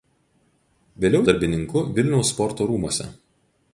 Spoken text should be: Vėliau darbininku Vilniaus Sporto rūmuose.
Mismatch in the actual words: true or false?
false